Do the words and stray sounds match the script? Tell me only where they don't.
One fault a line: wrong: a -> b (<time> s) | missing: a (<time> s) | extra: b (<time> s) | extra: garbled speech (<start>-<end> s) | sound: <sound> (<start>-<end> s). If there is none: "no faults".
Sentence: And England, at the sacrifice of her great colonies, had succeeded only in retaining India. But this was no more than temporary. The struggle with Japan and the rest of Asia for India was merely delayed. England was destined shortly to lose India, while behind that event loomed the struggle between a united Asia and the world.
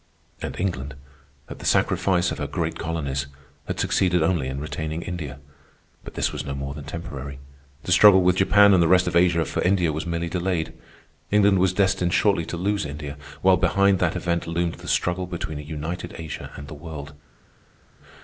no faults